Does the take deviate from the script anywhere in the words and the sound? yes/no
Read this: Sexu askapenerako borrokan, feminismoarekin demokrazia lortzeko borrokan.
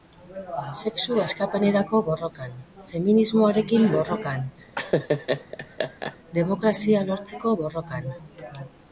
yes